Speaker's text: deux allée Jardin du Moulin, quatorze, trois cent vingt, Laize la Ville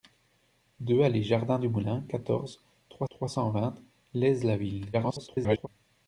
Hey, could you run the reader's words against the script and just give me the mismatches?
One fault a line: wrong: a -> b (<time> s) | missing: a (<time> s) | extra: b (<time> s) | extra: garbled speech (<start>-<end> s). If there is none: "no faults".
extra: trois (3.1 s)
extra: garbled speech (4.9-5.7 s)